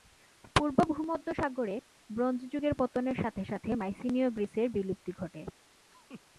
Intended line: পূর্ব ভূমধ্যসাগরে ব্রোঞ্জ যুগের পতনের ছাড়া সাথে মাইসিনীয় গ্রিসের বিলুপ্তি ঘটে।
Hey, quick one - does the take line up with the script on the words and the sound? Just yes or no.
no